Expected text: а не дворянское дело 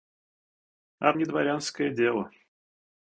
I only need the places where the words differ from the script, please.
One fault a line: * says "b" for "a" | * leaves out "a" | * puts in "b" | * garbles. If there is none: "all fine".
all fine